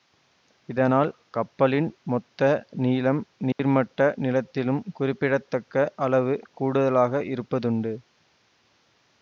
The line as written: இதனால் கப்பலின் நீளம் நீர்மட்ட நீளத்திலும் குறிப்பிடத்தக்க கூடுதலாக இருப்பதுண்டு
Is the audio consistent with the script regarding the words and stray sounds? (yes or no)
no